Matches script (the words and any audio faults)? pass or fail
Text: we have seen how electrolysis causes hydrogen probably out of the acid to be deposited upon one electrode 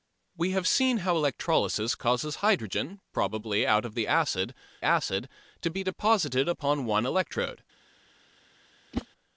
fail